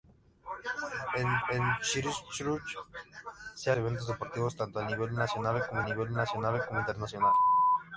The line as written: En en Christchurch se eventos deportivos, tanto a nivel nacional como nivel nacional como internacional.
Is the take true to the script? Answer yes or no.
yes